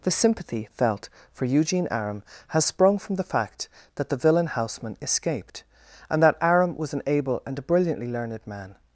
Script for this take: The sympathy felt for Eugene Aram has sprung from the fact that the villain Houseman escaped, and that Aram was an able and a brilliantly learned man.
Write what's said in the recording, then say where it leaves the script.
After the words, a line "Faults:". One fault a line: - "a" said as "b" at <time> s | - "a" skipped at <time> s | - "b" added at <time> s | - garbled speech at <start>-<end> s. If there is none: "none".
The sympathy felt for Eugene Aram has sprung from the fact that the villain Houseman escaped, and that Aram was an able and a brilliantly learned man.
Faults:
none